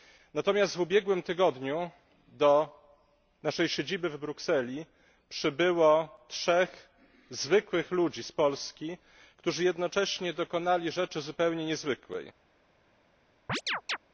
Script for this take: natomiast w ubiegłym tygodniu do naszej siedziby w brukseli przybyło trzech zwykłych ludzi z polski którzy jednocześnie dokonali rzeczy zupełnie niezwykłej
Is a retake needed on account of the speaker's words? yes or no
no